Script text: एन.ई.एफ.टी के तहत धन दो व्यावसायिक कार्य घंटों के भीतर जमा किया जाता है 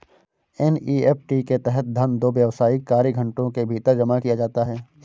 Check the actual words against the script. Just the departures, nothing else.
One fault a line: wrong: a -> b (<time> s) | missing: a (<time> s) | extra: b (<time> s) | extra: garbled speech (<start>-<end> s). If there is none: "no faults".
no faults